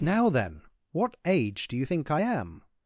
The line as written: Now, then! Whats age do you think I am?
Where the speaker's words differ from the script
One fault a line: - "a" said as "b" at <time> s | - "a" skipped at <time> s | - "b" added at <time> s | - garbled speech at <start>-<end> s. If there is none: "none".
- "Whats" said as "What" at 0.9 s